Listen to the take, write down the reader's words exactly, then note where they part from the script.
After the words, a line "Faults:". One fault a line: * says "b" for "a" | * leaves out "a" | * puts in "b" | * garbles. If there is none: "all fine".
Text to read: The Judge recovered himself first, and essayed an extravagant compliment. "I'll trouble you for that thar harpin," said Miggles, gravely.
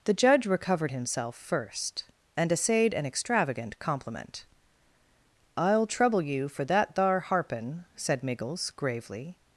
The Judge recovered himself first, and essayed an extravagant compliment. "I'll trouble you for that thar harpin," said Miggles, gravely.
Faults:
all fine